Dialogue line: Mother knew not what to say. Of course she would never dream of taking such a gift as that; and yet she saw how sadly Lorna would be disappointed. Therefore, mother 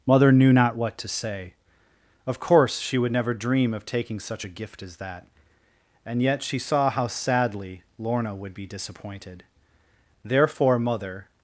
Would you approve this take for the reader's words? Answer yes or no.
yes